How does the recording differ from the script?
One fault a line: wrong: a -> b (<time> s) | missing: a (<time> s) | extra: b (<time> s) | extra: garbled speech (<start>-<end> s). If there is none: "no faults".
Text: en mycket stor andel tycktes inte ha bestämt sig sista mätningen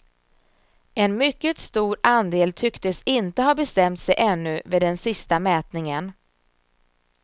extra: ännu vid den (4.2 s)